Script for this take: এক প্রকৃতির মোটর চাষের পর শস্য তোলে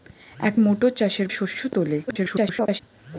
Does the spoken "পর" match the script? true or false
false